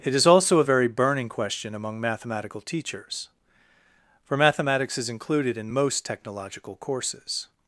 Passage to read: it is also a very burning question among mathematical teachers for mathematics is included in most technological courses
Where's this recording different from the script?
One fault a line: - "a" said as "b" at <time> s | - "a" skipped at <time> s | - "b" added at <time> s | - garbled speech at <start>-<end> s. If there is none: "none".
none